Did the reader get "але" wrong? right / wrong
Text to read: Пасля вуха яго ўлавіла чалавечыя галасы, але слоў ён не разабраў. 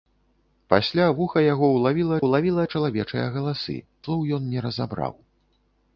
wrong